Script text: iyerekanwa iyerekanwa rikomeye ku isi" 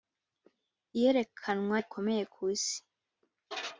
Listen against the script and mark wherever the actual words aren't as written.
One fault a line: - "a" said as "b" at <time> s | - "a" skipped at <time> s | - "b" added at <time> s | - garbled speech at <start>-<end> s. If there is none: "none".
- "iyerekanwa" skipped at 1.8 s